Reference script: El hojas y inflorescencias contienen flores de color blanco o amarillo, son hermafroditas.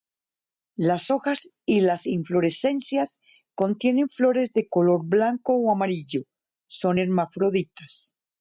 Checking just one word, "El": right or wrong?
wrong